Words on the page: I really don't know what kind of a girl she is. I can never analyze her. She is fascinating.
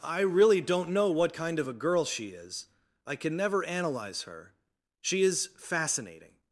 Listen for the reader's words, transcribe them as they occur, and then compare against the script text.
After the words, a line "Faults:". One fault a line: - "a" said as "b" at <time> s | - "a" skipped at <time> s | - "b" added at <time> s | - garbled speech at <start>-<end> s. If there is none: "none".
I really don't know what kind of a girl she is. I can never analyze her. She is fascinating.
Faults:
none